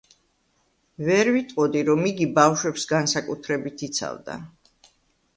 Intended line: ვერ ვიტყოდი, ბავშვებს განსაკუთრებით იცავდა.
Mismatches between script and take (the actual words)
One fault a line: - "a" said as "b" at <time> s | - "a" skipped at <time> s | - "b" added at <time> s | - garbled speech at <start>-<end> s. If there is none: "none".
- "რომ იგი" added at 1.9 s